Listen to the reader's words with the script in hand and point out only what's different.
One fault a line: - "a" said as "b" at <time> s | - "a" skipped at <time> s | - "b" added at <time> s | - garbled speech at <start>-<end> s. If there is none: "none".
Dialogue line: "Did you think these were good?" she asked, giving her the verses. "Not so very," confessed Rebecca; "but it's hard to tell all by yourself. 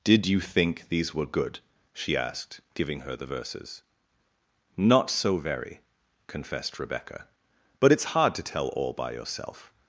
none